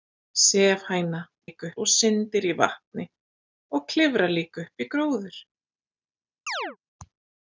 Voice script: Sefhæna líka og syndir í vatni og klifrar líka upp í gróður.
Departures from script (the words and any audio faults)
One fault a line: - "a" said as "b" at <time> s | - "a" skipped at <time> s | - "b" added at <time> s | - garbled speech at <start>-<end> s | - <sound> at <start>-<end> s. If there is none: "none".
- chirp at 6.5-6.8 s